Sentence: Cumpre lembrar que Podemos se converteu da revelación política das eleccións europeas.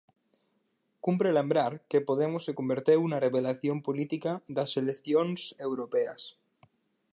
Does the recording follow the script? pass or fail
fail